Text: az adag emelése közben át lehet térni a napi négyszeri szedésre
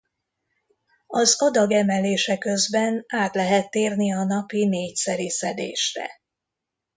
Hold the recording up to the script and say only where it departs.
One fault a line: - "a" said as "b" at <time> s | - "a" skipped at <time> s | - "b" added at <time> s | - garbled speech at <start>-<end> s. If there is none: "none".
none